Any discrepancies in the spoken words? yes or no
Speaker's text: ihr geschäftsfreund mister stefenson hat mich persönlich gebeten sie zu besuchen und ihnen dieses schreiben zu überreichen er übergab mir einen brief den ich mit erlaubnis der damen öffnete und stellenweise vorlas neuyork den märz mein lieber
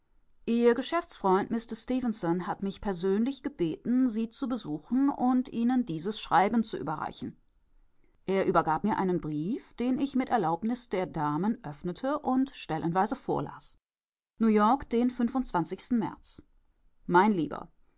no